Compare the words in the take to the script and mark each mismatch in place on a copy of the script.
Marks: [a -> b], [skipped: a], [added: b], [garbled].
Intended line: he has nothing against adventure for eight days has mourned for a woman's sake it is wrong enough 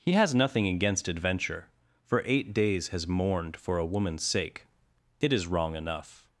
he has nothing against adventure for eight days has mourned for a woman's sake it is wrong enough